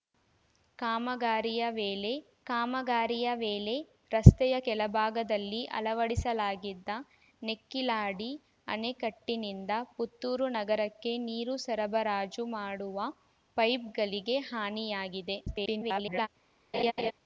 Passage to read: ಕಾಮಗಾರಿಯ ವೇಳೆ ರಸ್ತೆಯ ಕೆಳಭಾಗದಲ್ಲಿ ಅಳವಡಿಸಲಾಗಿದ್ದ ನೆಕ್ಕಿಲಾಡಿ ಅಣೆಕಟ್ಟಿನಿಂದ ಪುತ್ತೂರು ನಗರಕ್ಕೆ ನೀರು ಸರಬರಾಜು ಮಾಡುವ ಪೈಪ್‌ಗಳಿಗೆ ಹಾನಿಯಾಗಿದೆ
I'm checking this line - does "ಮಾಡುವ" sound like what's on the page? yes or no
yes